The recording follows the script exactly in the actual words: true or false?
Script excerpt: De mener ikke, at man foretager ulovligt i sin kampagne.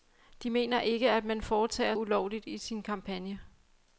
true